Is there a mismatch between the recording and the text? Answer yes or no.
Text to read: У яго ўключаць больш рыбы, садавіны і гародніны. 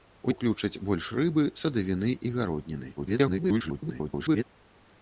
yes